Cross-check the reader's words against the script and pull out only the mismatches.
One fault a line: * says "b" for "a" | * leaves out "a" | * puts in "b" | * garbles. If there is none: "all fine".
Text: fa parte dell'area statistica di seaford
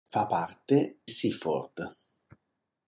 * leaves out "dell'area statistica di"